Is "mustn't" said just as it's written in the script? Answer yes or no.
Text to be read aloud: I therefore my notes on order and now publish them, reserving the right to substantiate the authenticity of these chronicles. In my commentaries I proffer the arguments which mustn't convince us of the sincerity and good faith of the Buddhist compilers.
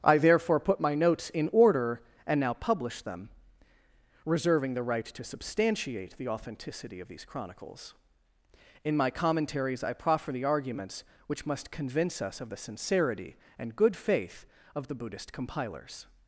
no